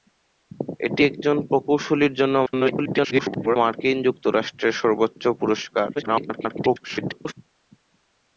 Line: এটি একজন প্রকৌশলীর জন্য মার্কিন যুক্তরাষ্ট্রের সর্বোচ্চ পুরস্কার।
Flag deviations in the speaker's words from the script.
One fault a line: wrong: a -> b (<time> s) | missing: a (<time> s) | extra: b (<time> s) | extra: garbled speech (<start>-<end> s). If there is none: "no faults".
extra: garbled speech (2.5-3.6 s)
extra: garbled speech (6.0-7.3 s)